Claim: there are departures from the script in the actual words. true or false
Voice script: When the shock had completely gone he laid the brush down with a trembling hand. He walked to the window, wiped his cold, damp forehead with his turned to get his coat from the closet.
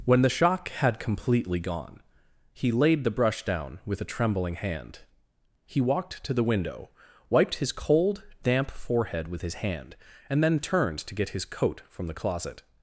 true